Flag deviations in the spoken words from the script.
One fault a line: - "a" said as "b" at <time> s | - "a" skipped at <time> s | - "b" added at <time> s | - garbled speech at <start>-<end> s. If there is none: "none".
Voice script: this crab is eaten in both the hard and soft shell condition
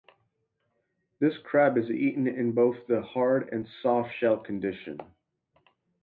none